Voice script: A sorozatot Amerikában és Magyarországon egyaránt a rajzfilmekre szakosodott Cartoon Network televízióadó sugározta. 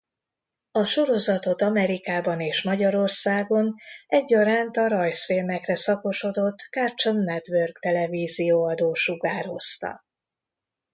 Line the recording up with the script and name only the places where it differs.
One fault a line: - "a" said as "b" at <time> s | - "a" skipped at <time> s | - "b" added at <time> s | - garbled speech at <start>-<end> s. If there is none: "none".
none